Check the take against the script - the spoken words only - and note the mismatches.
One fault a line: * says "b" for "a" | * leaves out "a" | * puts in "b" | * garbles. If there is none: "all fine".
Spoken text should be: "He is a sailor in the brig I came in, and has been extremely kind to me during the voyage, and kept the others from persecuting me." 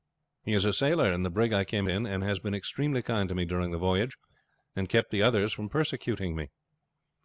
all fine